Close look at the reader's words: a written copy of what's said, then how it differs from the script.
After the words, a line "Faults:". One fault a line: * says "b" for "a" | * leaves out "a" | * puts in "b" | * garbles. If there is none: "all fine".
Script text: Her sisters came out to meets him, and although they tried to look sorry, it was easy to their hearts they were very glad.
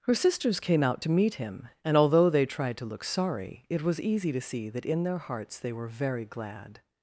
Her sisters came out to meet him, and although they tried to look sorry, it was easy to see that in their hearts they were very glad.
Faults:
* says "meet" for "meets"
* puts in "see that in"